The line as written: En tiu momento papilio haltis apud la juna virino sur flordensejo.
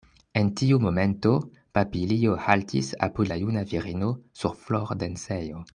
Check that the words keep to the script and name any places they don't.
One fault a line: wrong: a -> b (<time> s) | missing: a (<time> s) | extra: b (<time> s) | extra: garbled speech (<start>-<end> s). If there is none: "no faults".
no faults